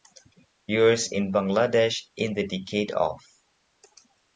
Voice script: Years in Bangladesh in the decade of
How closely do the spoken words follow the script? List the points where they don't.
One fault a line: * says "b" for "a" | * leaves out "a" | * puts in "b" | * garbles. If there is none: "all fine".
all fine